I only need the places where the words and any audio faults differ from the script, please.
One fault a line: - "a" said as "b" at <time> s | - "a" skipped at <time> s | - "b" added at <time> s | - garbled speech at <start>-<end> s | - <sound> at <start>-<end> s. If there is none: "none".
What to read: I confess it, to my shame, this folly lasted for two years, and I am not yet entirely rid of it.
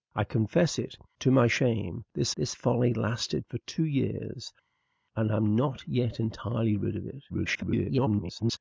- "this" added at 2.4 s
- garbled speech at 7.3-8.6 s